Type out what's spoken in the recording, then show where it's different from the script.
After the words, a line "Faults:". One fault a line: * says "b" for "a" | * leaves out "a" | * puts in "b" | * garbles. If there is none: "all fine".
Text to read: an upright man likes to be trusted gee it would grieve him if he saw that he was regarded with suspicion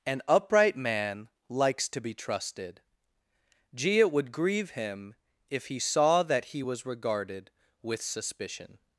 an upright man likes to be trusted gee it would grieve him if he saw that he was regarded with suspicion
Faults:
all fine